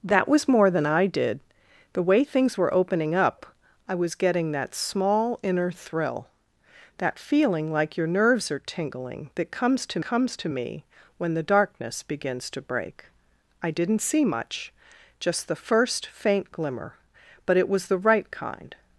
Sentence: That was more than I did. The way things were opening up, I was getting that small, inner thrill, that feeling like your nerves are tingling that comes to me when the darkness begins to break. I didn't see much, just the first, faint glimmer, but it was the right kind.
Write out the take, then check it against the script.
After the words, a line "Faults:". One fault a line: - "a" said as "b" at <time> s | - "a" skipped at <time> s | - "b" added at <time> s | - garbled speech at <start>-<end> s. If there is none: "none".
That was more than I did. The way things were opening up, I was getting that small, inner thrill, that feeling like your nerves are tingling that comes to comes to me when the darkness begins to break. I didn't see much, just the first, faint glimmer, but it was the right kind.
Faults:
- "comes to" added at 10.0 s